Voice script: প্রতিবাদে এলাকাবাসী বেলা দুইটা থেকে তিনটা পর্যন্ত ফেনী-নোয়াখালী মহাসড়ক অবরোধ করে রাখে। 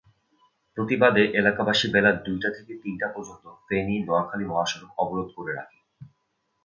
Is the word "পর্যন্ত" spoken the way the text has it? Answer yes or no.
yes